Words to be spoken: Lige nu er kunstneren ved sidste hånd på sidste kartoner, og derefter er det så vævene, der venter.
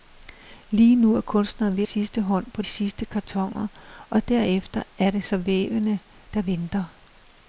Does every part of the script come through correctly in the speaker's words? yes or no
yes